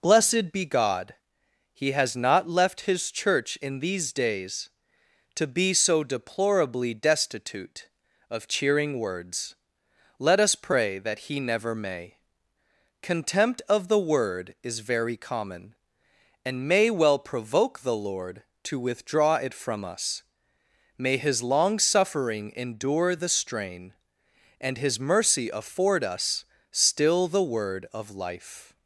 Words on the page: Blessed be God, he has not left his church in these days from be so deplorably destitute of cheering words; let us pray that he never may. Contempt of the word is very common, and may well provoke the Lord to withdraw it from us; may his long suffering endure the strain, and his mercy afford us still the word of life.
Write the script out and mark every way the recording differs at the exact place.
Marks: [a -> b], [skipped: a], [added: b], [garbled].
Blessed be God, he has not left his church in these days [from -> to] be so deplorably destitute of cheering words; let us pray that he never may. Contempt of the word is very common, and may well provoke the Lord to withdraw it from us; may his long suffering endure the strain, and his mercy afford us still the word of life.